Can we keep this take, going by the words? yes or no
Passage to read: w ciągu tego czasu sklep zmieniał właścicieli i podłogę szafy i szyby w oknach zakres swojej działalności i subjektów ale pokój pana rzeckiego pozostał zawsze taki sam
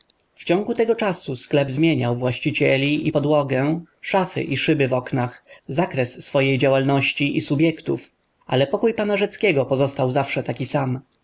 yes